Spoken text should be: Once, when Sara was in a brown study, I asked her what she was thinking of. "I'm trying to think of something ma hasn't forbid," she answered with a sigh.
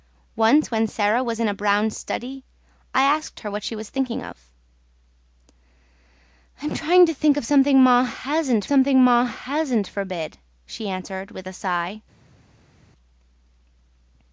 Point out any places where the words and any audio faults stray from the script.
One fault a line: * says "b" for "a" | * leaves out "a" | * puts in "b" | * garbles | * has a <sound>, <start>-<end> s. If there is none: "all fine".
* puts in "something ma hasn't"